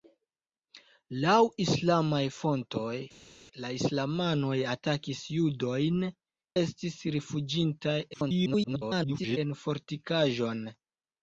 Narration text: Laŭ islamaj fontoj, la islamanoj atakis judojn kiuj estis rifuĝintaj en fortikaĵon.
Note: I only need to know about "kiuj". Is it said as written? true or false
false